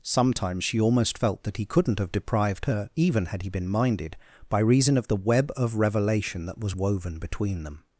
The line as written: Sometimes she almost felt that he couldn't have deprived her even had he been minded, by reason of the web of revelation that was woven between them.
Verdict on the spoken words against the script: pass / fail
pass